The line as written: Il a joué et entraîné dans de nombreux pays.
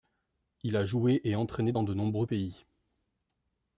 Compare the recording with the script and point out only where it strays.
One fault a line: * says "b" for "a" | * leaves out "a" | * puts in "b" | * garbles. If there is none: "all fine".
all fine